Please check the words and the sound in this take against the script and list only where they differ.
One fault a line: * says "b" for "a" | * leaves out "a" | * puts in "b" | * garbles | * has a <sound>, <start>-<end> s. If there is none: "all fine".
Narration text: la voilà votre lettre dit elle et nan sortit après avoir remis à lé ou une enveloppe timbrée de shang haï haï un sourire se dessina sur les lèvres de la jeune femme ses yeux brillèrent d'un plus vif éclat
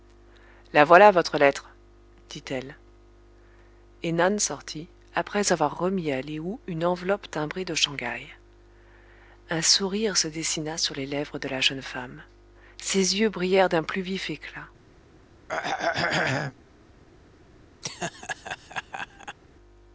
* leaves out "haï"
* has a throat clearing, 15.5-16.5 s
* has a laugh, 17.8-19.4 s